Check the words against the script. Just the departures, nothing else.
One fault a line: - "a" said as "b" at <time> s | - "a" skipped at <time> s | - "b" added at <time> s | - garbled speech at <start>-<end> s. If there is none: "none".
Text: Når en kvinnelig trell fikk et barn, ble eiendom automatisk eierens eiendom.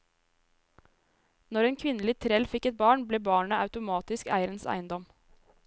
- "eiendom" said as "barnet" at 3.3 s